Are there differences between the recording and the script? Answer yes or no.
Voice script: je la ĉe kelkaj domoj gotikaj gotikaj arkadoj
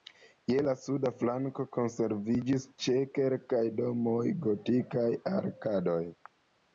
yes